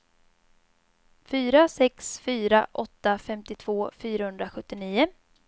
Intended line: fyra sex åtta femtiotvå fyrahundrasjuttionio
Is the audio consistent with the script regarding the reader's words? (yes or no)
no